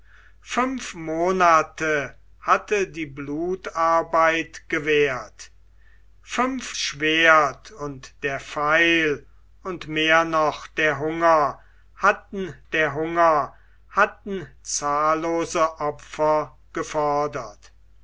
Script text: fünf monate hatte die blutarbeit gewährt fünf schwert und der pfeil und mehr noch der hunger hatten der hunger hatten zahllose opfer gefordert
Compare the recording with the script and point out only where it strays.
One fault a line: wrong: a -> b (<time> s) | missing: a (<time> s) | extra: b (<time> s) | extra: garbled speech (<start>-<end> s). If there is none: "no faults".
no faults